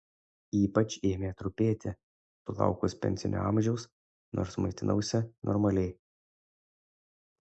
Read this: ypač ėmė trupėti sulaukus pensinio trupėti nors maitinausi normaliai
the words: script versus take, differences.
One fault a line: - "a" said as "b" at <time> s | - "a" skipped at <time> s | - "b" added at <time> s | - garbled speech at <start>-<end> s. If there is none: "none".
- "trupėti" said as "amžiaus" at 3.5 s